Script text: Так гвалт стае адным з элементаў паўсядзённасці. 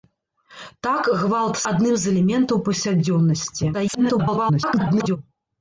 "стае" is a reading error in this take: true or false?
true